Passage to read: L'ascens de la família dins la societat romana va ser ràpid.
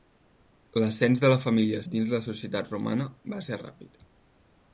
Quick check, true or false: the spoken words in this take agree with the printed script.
true